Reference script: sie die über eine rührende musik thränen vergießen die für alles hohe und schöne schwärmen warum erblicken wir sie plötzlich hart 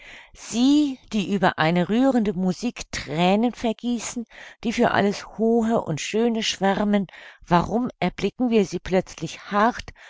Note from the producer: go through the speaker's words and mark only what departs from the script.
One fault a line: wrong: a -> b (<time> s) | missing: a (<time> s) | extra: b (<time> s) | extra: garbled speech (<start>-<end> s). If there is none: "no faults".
no faults